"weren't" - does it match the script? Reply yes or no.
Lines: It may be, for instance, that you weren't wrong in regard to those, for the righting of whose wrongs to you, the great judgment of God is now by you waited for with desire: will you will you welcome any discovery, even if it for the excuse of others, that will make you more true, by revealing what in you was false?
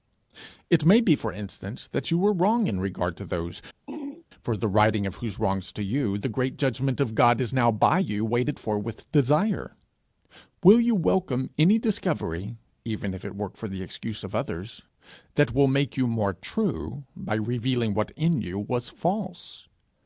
no